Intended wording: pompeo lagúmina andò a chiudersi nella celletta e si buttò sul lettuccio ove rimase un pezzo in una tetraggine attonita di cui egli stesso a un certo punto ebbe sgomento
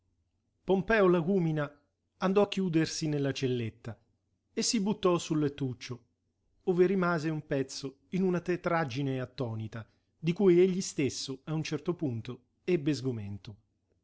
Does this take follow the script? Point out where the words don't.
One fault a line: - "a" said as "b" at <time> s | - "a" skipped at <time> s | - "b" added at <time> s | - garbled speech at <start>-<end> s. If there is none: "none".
none